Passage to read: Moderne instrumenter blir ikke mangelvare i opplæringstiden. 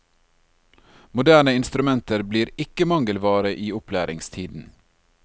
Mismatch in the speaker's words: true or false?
false